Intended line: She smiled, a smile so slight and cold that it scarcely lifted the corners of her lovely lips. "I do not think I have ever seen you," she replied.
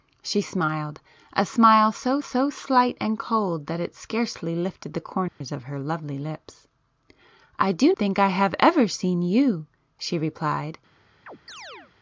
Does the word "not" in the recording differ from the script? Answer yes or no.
yes